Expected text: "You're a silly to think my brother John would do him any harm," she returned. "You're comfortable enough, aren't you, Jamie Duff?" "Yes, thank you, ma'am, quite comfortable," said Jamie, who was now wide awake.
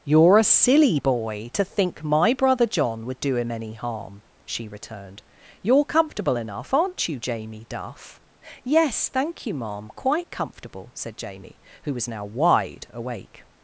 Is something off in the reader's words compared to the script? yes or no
yes